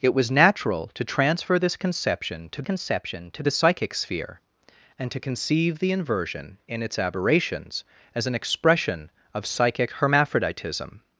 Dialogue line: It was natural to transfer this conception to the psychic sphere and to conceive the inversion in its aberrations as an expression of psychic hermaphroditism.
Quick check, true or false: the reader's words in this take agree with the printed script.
false